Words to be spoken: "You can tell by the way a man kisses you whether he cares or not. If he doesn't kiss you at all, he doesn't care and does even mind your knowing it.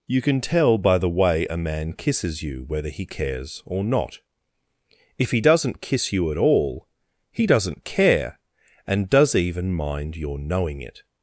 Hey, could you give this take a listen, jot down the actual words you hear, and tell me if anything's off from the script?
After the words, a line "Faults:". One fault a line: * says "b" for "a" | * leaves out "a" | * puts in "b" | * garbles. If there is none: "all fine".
"You can tell by the way a man kisses you whether he cares or not. If he doesn't kiss you at all, he doesn't care and does even mind your knowing it.
Faults:
all fine